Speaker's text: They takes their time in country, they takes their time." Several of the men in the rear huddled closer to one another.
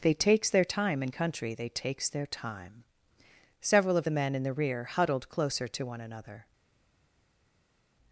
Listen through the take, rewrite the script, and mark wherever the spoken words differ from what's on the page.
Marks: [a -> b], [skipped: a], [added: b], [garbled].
They takes their time in country, they takes their time." Several of the men in the rear huddled closer to one another.